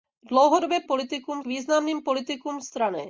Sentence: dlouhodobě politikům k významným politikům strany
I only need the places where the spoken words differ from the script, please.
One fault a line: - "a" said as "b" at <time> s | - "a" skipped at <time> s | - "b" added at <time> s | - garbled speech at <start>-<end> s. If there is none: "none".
none